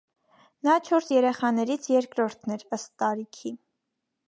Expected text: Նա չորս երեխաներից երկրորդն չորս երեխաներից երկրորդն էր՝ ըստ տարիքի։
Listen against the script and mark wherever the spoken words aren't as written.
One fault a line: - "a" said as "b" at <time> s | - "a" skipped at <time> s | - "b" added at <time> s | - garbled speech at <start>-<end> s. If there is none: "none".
- "չորս երեխաներից երկրորդն" skipped at 2.6 s